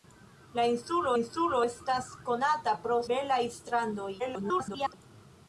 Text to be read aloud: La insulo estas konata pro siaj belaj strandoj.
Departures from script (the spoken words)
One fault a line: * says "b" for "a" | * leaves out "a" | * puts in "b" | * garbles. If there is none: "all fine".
* puts in "insulo"
* leaves out "siaj"
* garbles